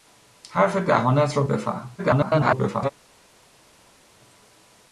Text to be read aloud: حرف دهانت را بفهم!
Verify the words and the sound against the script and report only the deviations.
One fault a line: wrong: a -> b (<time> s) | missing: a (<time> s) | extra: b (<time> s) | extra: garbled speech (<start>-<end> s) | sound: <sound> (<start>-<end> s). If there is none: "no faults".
extra: garbled speech (2.0-2.9 s)